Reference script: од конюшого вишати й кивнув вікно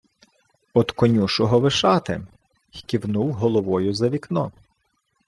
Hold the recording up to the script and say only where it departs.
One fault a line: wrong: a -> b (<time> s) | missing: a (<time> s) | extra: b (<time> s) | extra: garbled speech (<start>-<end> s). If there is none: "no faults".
extra: головою за (3.3 s)